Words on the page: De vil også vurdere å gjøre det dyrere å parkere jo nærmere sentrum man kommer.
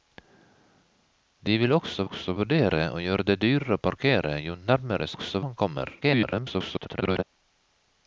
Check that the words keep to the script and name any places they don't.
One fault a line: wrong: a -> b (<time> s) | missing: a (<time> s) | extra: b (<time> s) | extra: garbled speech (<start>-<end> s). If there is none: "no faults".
extra: også (2.0 s)
wrong: sentrum -> også (5.1 s)
extra: garbled speech (6.0-7.2 s)